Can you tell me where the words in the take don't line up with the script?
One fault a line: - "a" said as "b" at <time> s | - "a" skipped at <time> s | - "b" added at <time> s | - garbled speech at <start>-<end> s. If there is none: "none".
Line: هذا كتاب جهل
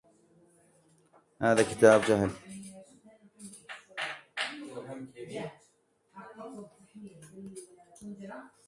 none